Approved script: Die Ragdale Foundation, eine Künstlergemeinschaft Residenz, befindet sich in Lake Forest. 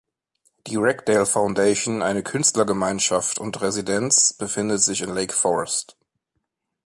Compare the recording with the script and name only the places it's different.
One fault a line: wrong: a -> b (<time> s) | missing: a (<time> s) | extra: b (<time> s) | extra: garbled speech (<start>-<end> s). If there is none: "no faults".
extra: und (3.4 s)